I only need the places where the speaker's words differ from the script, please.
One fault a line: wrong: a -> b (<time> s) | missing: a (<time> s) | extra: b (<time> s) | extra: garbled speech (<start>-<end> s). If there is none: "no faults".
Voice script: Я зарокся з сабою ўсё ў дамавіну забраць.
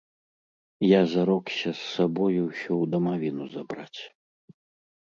no faults